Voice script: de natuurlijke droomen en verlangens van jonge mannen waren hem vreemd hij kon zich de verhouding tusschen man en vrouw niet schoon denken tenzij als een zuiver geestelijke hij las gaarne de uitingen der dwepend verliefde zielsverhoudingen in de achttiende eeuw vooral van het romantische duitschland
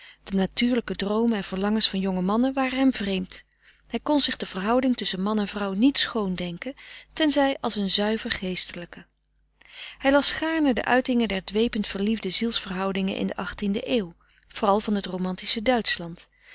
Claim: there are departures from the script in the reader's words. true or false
false